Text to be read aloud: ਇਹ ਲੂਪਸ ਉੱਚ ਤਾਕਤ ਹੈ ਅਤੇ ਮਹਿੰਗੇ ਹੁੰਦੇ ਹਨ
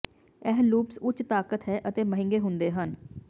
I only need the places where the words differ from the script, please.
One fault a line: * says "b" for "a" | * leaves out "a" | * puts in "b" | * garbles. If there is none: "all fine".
all fine